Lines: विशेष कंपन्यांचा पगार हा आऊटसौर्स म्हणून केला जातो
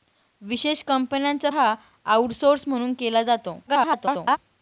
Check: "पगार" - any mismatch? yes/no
yes